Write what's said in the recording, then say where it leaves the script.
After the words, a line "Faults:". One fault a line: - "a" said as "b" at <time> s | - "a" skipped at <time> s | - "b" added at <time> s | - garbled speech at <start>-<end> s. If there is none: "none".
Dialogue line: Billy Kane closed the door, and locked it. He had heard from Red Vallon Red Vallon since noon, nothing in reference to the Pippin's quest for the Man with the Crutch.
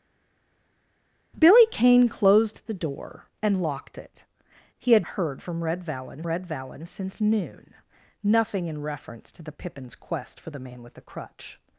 Billy Kane closed the door, and locked it. He had heard from Red Vallon Red Vallon since noon, nothing in reference to the Pippin's quest for the Man with the Crutch.
Faults:
none